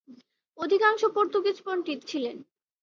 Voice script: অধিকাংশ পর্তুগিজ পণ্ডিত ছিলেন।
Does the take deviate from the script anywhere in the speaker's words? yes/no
no